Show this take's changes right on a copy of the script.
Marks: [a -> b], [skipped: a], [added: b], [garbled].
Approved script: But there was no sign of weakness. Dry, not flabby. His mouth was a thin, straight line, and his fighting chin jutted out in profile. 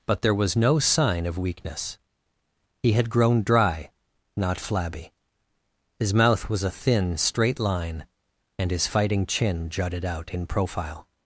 But there was no sign of weakness. [added: He had grown] Dry, not flabby. His mouth was a thin, straight line, and his fighting chin jutted out in profile.